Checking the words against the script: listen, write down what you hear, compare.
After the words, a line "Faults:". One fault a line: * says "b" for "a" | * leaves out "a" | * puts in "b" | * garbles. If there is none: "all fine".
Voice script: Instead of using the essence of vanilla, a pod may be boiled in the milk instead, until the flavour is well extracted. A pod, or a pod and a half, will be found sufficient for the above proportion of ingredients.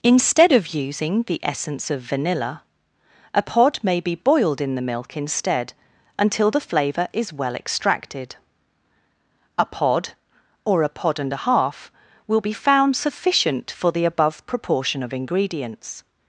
Instead of using the essence of vanilla, a pod may be boiled in the milk instead, until the flavour is well extracted. A pod, or a pod and a half, will be found sufficient for the above proportion of ingredients.
Faults:
all fine